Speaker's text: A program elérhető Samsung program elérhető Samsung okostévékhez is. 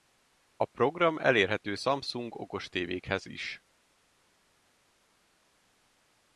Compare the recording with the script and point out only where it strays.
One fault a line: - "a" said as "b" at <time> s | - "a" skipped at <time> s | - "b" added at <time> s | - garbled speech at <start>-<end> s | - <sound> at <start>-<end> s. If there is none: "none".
- "program elérhető Samsung" skipped at 2.4 s